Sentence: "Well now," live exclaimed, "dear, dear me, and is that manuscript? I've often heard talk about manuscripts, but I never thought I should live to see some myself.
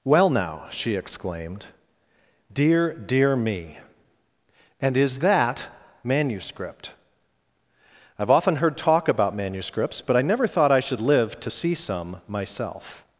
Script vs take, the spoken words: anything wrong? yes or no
yes